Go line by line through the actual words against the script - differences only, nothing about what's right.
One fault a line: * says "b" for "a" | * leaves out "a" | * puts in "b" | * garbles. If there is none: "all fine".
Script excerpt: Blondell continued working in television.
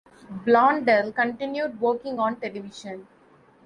* says "on" for "in"